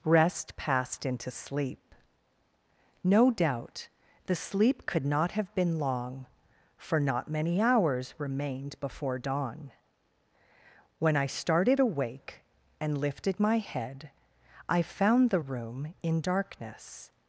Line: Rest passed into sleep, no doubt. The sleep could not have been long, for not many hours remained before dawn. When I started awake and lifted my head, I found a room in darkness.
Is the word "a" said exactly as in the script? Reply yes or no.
no